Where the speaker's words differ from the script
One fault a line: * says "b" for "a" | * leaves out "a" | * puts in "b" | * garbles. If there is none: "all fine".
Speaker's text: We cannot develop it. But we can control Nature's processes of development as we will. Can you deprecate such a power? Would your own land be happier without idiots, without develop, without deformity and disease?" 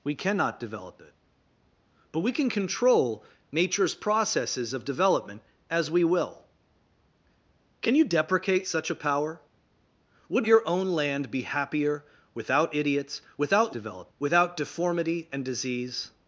all fine